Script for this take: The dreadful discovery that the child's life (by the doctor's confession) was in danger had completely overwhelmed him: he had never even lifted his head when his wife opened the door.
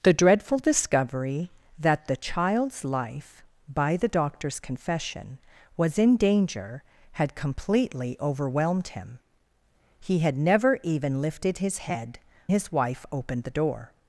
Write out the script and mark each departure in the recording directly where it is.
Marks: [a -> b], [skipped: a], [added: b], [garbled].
The dreadful discovery that the child's life (by the doctor's confession) was in danger had completely overwhelmed him: he had never even lifted his head [skipped: when] his wife opened the door.